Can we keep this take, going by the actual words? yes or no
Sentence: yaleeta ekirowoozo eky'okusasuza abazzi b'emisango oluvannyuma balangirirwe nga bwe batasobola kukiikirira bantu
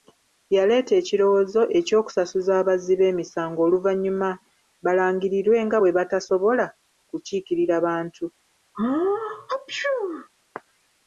yes